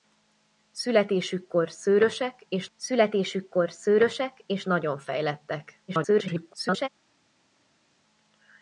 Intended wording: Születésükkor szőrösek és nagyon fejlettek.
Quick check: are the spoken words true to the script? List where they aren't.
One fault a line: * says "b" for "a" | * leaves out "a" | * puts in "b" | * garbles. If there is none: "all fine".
* puts in "születésükkor szőrösek és"
* garbles